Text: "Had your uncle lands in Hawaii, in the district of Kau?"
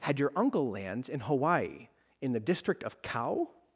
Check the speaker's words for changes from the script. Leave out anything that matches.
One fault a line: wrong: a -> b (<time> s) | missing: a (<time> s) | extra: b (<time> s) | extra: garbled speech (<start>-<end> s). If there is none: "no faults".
no faults